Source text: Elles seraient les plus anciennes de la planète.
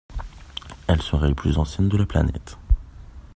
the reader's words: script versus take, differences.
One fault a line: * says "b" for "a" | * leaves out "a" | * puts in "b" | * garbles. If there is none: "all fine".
all fine